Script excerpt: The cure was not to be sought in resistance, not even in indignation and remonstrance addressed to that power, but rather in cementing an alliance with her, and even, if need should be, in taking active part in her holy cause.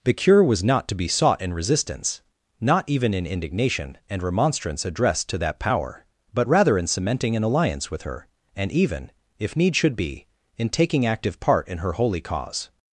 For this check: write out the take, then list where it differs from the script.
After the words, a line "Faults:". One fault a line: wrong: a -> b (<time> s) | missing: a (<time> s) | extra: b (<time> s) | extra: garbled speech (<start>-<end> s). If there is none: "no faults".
The cure was not to be sought in resistance, not even in indignation and remonstrance addressed to that power, but rather in cementing an alliance with her, and even, if need should be, in taking active part in her holy cause.
Faults:
no faults